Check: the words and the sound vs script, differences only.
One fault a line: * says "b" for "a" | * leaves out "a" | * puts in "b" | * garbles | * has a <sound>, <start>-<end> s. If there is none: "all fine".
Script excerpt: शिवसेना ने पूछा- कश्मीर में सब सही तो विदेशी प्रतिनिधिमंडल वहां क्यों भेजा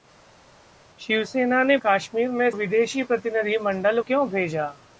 * leaves out "पूछा"
* leaves out "सब सही तो"
* leaves out "वहां"